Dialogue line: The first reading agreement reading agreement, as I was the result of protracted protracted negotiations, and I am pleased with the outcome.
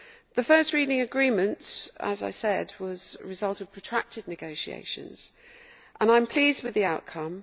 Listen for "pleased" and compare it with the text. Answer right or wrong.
right